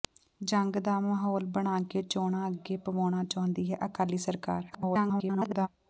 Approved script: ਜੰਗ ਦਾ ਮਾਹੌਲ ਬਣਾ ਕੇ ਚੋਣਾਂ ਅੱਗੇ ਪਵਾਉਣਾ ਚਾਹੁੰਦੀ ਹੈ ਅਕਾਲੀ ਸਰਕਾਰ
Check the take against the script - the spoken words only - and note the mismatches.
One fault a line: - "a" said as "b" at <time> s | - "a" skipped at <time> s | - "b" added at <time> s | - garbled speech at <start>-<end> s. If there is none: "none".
- garbled speech at 4.7-5.7 s